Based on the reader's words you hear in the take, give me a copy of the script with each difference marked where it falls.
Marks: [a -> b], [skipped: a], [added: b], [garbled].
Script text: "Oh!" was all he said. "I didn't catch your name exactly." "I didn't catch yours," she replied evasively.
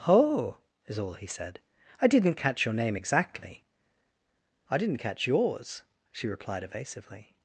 "Oh!" [was -> is] all he said. "I didn't catch your name exactly." "I didn't catch yours," she replied evasively.